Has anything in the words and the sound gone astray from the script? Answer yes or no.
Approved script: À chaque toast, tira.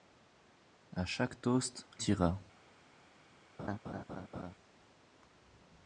yes